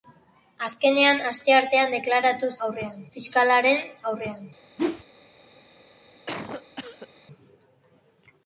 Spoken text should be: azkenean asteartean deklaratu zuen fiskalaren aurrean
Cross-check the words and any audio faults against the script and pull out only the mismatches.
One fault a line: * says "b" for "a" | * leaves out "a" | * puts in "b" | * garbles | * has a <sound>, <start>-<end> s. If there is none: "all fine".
* says "aurrean" for "zuen"
* has a whoosh, 4.8-5.0 s
* has a cough, 6.3-7.1 s